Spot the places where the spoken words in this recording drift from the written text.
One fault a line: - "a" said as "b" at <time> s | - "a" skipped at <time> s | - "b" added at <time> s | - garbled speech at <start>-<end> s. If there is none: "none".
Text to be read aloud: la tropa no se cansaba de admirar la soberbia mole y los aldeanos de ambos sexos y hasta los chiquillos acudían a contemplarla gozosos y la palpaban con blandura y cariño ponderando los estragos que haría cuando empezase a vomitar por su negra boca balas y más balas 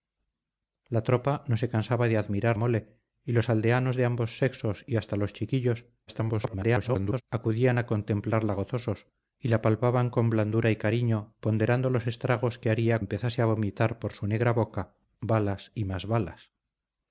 - "la soberbia" skipped at 2.6 s
- garbled speech at 6.1-7.2 s
- "cuando" skipped at 13.0 s